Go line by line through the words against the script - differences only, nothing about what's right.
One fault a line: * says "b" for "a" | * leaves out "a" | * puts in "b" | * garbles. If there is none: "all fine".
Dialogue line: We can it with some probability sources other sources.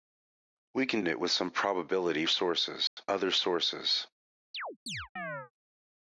all fine